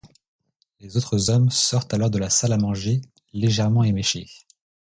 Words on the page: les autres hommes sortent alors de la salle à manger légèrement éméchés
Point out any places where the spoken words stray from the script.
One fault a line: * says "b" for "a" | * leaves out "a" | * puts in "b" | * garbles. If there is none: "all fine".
all fine